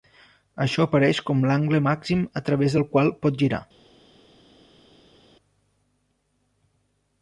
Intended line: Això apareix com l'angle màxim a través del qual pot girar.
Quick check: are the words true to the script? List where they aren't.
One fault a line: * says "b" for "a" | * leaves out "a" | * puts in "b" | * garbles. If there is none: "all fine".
all fine